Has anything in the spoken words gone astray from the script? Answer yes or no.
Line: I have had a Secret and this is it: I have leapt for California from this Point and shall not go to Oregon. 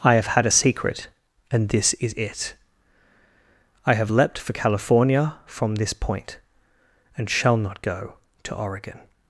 no